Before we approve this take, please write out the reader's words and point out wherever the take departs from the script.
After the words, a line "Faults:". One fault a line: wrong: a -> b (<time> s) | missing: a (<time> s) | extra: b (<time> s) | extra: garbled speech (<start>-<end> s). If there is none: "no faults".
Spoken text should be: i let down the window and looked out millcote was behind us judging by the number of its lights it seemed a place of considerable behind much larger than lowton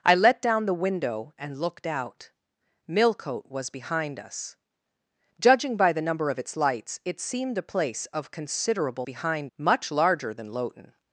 i let down the window and looked out millcote was behind us judging by the number of its lights it seemed a place of considerable behind much larger than lowton
Faults:
no faults